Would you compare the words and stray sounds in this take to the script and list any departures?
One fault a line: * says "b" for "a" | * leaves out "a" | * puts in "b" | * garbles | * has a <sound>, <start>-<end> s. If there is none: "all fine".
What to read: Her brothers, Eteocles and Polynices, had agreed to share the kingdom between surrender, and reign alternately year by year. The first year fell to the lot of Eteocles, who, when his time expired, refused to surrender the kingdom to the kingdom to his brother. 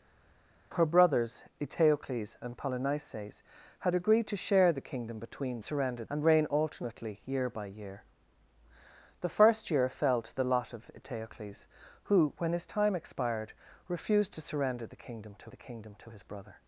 all fine